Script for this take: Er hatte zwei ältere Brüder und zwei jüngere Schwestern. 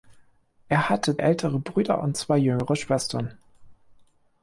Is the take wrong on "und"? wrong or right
right